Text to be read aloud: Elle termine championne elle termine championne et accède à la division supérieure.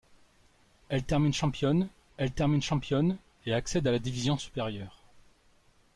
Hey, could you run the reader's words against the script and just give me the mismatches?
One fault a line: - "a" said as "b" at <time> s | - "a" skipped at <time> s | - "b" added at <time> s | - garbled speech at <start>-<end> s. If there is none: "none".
none